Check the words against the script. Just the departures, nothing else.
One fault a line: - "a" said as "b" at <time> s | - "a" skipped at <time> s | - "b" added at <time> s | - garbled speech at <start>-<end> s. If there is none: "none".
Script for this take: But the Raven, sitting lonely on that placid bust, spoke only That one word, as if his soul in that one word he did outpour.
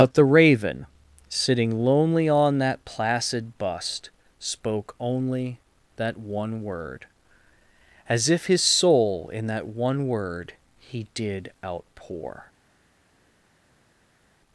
none